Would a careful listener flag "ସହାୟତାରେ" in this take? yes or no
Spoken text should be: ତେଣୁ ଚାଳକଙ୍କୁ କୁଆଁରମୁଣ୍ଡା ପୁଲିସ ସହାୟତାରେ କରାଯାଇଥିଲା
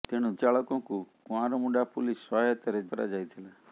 no